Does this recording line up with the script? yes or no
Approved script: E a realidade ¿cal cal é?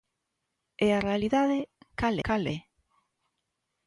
yes